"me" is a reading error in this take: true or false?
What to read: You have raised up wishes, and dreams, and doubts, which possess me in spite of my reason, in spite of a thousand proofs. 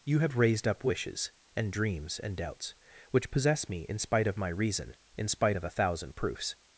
false